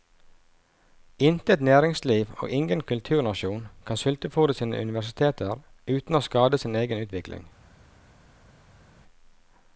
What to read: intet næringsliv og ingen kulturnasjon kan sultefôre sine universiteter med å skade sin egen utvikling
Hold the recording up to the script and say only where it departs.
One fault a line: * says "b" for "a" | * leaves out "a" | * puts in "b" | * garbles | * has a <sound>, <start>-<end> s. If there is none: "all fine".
* says "uten" for "med"